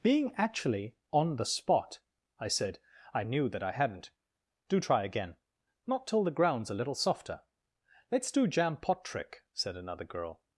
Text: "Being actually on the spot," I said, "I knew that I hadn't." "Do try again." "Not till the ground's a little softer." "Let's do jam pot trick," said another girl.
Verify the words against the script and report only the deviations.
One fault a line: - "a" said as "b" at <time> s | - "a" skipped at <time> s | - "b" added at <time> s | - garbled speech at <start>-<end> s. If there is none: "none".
none